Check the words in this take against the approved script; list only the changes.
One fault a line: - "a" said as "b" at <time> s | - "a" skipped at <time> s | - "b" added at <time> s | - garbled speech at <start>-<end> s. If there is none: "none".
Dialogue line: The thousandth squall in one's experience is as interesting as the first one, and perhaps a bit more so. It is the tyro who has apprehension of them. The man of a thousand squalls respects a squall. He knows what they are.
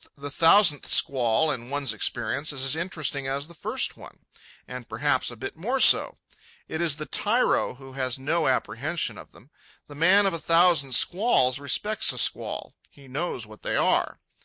- "no" added at 8.2 s